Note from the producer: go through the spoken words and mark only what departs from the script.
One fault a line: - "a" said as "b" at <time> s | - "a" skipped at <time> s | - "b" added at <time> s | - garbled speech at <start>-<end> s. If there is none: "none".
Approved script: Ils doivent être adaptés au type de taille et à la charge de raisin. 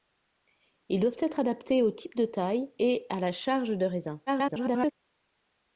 - garbled speech at 4.3-4.9 s